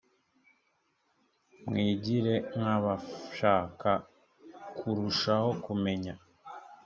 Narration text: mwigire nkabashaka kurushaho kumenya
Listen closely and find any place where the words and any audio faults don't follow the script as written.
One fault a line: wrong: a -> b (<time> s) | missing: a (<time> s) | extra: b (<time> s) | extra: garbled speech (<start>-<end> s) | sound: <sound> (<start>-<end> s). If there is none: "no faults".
no faults